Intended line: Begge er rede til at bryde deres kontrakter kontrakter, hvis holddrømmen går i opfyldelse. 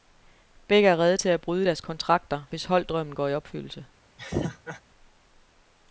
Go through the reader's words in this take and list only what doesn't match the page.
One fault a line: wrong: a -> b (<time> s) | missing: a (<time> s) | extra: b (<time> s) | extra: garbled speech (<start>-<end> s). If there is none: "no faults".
missing: kontrakter (2.4 s)